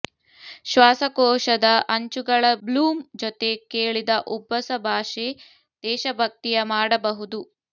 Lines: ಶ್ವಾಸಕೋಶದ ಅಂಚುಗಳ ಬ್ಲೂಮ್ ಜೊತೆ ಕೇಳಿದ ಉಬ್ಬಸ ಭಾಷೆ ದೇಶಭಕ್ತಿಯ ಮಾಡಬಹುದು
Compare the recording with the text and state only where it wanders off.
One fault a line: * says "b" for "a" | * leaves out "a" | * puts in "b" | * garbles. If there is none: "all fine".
all fine